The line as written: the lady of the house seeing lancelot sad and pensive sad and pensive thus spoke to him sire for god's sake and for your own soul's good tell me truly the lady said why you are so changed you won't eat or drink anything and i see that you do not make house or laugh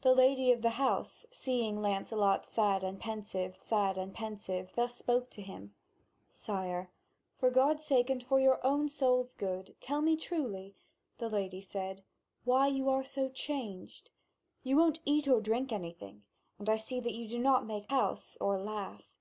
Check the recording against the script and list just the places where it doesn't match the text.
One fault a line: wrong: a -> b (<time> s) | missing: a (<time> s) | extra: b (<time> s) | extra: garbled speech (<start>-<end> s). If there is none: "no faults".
no faults